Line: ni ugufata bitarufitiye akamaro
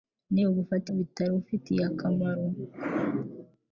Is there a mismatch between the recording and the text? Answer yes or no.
no